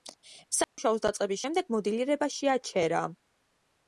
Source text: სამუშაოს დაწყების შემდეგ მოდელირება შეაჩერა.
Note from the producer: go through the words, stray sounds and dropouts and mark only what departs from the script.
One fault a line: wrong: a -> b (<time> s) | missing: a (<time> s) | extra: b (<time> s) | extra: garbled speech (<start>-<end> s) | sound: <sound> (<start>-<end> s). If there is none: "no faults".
sound: dropout (0.6-0.8 s)